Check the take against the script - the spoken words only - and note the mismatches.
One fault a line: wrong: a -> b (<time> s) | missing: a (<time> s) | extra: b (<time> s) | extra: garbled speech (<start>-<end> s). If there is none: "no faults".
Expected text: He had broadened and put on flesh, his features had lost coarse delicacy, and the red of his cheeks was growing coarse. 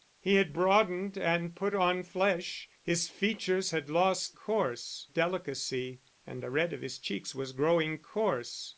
no faults